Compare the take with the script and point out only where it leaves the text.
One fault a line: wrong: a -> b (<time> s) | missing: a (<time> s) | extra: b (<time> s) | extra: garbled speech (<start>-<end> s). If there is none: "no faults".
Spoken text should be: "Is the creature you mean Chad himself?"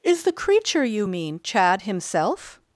no faults